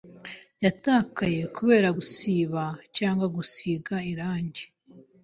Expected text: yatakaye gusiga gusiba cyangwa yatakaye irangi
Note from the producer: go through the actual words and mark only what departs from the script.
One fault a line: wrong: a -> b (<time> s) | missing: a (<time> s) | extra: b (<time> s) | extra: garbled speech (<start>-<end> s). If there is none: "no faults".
wrong: gusiga -> kubera (1.6 s)
wrong: yatakaye -> gusiga (3.4 s)